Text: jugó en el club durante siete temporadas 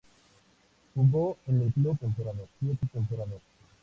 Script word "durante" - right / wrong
wrong